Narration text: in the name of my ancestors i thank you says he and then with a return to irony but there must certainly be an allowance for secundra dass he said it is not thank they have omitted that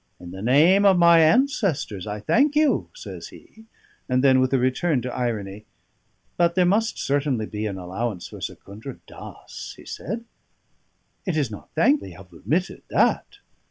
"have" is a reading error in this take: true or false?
false